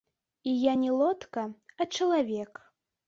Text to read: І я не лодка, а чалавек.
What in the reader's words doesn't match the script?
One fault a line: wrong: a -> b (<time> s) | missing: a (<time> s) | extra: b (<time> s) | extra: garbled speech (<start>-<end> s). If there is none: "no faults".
no faults